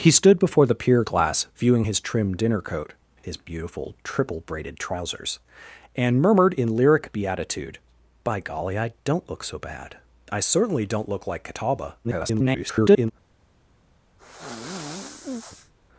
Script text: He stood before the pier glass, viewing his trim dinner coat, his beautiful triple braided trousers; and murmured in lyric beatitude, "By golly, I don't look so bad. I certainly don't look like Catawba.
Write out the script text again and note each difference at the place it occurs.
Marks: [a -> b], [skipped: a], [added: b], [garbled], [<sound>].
He stood before the pier glass, viewing his trim dinner coat, his beautiful triple braided trousers; and murmured in lyric beatitude, "By golly, I don't look so bad. I certainly don't look like Catawba. [garbled] [sigh]